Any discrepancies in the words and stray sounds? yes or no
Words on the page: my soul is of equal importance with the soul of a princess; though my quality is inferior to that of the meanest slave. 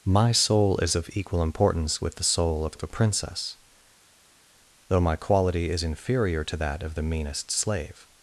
yes